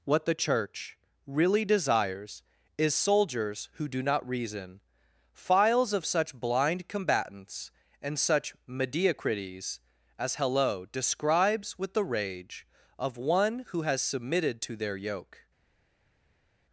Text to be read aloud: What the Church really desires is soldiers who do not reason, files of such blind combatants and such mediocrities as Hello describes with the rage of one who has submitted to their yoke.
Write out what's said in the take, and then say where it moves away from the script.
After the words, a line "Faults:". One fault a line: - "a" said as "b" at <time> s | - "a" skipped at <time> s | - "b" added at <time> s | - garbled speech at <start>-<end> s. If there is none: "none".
What the Church really desires is soldiers who do not reason, files of such blind combatants and such mediocrities as Hello describes with the rage of one who has submitted to their yoke.
Faults:
none